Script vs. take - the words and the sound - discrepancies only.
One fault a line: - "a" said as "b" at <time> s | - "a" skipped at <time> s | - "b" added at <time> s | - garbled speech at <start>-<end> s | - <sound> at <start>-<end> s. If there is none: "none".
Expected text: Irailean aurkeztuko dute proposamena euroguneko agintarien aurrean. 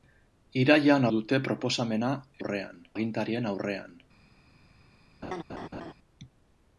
- "aurkeztuko" skipped at 1.1 s
- "euroguneko" said as "aurrean" at 2.4 s
- laugh at 5.2-5.9 s